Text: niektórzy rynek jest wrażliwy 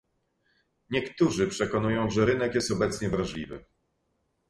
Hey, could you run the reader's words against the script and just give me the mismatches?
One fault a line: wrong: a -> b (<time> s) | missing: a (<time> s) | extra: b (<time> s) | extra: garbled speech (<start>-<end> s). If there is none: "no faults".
extra: przekonują że (1.5 s)
extra: obecnie (2.7 s)